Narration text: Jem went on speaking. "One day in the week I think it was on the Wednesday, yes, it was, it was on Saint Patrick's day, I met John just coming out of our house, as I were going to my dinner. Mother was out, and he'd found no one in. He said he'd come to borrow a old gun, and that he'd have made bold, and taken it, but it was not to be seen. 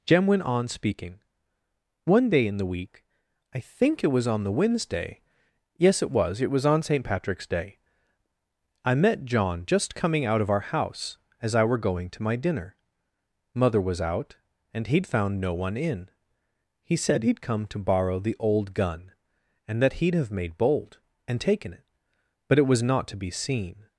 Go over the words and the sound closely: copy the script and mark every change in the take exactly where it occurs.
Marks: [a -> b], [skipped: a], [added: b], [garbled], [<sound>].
Jem went on speaking. "One day in the week I think it was on the Wednesday, yes, it was, it was on Saint Patrick's day, I met John just coming out of our house, as I were going to my dinner. Mother was out, and he'd found no one in. He said he'd come to borrow [a -> the] old gun, and that he'd have made bold, and taken it, but it was not to be seen.